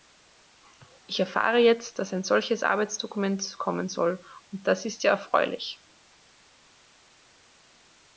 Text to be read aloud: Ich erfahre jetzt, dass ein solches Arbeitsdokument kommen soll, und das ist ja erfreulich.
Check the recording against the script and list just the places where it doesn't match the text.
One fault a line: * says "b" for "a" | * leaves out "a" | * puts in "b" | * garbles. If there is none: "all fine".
all fine